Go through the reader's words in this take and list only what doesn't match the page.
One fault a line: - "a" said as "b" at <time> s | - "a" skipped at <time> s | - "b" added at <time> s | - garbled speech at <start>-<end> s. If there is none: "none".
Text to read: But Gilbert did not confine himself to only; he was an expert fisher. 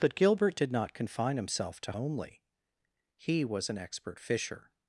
none